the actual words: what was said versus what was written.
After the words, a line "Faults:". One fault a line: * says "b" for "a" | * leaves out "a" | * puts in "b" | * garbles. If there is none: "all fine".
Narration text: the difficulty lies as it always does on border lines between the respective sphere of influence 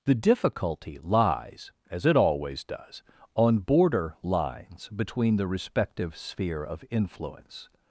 the difficulty lies as it always does on border lines between the respective sphere of influence
Faults:
all fine